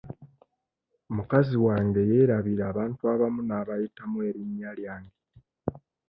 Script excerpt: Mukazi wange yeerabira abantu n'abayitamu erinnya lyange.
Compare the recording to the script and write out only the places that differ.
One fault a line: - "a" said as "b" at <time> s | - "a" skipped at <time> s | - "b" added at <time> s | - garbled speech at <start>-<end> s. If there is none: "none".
- "abamu" added at 3.1 s